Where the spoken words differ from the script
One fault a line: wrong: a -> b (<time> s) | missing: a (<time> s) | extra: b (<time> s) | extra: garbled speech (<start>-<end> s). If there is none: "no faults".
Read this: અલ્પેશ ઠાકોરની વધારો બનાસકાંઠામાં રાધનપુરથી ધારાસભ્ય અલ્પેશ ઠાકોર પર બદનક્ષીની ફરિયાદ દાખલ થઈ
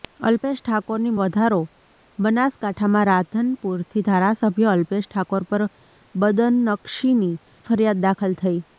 no faults